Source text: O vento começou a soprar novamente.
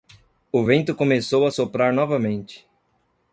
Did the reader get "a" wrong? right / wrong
right